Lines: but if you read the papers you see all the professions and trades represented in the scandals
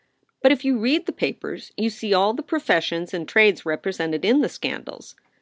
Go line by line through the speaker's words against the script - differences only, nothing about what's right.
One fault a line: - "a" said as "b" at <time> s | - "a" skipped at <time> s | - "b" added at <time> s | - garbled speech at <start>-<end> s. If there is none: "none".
none